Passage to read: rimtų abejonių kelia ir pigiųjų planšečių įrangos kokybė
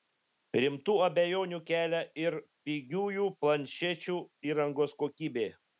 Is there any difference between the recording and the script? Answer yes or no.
no